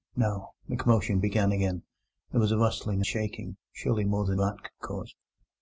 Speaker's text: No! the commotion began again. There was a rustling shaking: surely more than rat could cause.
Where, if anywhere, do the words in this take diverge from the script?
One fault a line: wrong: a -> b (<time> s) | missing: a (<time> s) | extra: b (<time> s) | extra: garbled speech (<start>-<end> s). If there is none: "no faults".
no faults